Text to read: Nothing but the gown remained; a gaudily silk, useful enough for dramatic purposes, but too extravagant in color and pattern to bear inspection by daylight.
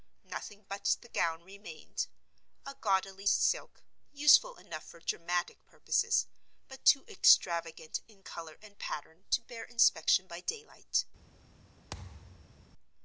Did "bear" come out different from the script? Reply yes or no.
no